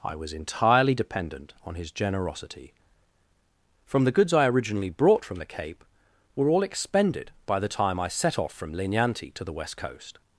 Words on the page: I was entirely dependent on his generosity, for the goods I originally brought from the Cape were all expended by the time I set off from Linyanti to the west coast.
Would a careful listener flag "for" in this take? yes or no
yes